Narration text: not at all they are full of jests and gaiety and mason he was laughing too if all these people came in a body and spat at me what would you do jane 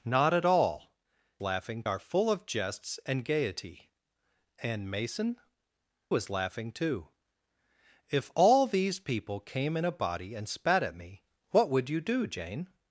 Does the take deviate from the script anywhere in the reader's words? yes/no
yes